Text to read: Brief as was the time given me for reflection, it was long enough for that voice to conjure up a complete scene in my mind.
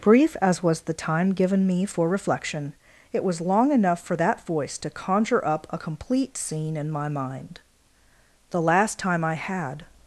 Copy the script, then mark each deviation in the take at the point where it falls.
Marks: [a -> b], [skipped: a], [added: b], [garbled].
Brief as was the time given me for reflection, it was long enough for that voice to conjure up a complete scene in my mind. [added: The last time I had]